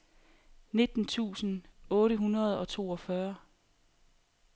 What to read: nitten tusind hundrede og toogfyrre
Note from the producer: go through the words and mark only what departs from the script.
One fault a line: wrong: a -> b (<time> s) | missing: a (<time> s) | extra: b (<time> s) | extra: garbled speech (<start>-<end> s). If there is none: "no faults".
extra: otte (1.9 s)